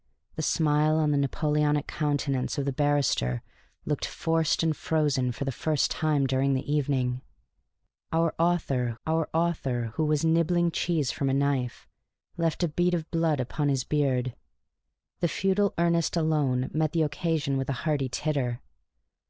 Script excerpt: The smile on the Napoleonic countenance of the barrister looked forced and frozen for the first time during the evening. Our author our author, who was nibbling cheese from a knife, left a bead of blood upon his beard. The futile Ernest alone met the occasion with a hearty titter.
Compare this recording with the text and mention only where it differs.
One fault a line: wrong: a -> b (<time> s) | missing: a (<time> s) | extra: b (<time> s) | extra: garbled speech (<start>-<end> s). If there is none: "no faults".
no faults